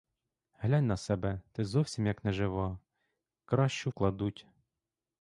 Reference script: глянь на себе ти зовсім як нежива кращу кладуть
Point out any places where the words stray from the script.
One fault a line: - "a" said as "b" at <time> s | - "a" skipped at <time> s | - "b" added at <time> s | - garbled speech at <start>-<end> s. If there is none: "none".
none